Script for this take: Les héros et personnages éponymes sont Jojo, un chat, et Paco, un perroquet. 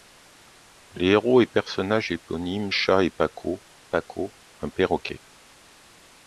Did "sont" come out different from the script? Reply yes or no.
yes